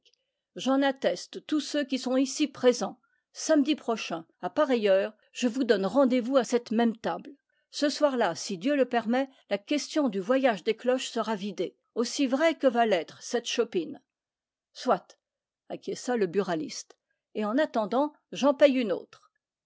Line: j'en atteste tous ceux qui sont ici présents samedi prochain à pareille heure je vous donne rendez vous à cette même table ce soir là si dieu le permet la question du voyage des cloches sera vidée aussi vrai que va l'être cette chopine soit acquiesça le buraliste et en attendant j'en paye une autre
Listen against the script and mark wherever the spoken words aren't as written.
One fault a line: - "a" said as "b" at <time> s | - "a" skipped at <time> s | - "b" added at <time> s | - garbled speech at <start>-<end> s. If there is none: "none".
none